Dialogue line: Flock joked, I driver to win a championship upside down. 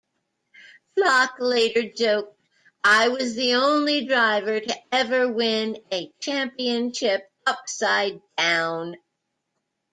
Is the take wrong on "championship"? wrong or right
right